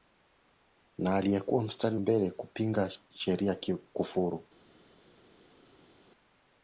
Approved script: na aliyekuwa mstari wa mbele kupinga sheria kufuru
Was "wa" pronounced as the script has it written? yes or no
no